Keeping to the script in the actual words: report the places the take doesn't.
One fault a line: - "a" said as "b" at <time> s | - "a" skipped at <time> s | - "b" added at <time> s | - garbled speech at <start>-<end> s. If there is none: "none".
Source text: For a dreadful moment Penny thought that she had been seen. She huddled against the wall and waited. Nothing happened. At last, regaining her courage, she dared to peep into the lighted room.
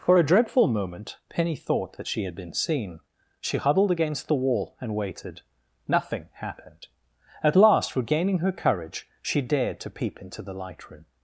- "lighted" said as "light" at 10.5 s